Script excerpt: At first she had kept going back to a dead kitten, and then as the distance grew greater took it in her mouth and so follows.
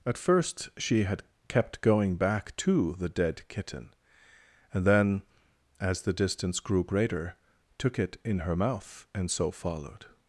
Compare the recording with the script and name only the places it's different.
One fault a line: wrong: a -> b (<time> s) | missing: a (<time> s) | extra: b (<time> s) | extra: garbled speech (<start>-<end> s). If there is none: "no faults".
wrong: a -> the (2.9 s)
wrong: follows -> followed (9.5 s)